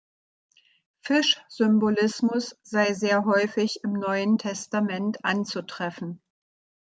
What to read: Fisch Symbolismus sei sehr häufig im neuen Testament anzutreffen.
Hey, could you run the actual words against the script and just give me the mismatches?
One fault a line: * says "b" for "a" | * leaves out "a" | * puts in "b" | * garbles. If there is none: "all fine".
all fine